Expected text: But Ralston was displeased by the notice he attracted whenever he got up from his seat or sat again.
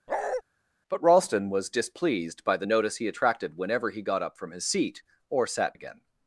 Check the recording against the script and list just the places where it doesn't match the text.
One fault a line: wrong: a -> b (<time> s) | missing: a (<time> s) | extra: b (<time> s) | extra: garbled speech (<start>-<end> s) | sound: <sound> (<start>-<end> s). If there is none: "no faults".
sound: bark (0.1-0.4 s)